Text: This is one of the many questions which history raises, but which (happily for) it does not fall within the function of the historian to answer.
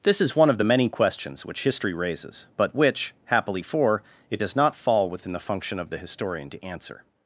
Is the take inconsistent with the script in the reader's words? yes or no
no